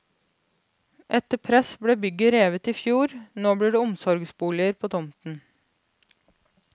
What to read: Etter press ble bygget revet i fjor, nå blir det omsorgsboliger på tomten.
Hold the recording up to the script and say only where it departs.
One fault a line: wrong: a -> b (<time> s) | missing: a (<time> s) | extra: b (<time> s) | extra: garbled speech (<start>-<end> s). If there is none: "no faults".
no faults